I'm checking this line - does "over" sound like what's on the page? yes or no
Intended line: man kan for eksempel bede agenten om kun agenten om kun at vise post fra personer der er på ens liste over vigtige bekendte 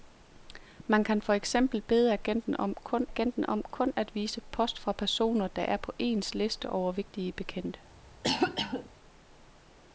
yes